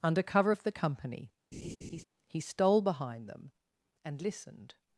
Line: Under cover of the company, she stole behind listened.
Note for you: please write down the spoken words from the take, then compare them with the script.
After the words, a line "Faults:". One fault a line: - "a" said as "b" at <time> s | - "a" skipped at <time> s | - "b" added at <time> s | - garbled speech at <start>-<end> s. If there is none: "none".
Under cover of the company, he stole behind them and listened.
Faults:
- "she" said as "he" at 2.3 s
- "them and" added at 3.3 s